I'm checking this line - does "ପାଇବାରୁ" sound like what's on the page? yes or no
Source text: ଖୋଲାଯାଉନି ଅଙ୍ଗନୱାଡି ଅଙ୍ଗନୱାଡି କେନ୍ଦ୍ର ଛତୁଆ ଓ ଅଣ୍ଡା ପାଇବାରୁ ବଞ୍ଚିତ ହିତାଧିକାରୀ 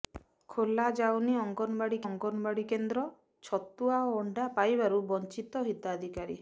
yes